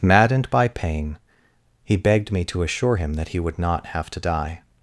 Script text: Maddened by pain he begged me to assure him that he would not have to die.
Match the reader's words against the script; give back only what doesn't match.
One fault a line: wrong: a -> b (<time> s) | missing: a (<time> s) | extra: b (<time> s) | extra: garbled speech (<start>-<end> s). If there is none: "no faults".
no faults